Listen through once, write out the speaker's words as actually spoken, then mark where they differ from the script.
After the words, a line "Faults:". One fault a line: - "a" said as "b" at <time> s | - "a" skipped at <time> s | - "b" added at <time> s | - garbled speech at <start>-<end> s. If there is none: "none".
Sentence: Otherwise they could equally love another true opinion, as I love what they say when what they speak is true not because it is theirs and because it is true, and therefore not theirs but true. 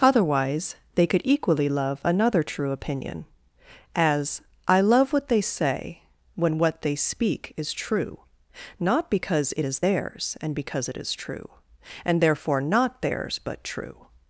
Otherwise they could equally love another true opinion, as I love what they say when what they speak is true not because it is theirs and because it is true, and therefore not theirs but true.
Faults:
none